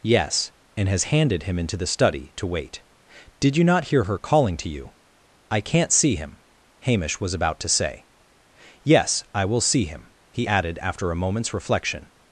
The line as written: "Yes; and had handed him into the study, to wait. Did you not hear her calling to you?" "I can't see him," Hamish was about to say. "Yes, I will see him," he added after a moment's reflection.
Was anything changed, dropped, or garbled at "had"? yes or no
yes